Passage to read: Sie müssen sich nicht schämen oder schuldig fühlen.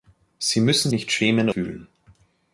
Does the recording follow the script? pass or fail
fail